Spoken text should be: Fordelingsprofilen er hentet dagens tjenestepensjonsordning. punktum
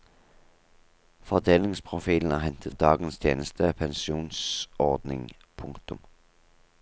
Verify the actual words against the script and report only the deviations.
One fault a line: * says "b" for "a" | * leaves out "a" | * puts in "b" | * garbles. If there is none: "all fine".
all fine